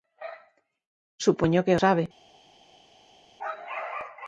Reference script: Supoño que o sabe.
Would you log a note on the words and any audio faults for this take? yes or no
no